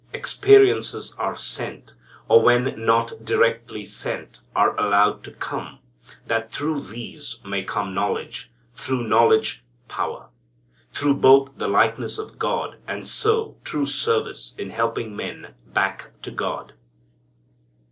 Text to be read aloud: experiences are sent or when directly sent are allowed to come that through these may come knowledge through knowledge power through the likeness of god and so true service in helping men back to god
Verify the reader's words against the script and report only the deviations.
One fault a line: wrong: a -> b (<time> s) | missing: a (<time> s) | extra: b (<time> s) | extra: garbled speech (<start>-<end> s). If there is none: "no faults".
extra: not (2.8 s)
extra: both (11.1 s)